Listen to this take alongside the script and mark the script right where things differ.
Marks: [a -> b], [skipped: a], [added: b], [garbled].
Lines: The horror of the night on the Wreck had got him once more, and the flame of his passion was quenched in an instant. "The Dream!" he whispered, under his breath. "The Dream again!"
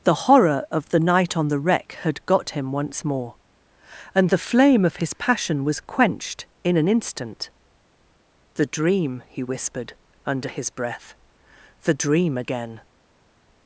The horror of the night on the Wreck had got him once more, and the flame of his passion was quenched in an instant. "The Dream!" he whispered, under his breath. "The Dream again!"